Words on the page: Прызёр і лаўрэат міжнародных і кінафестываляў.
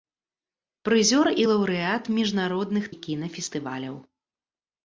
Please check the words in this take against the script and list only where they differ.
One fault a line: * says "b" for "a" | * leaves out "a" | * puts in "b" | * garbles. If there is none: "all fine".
all fine